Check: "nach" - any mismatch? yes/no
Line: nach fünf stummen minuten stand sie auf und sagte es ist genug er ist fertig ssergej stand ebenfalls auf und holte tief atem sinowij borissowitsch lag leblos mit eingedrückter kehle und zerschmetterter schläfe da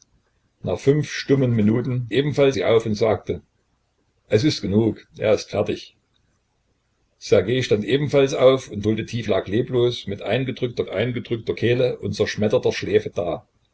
no